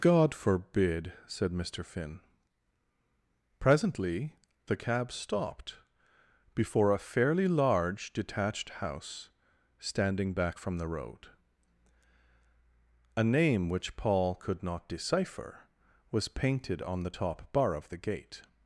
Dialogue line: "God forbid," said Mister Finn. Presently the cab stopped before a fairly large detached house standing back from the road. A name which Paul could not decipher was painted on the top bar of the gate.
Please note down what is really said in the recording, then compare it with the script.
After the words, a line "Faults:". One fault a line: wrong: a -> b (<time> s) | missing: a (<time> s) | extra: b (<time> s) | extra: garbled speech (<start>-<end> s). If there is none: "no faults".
"God forbid," said Mister Finn. Presently the cab stopped before a fairly large detached house standing back from the road. A name which Paul could not decipher was painted on the top bar of the gate.
Faults:
no faults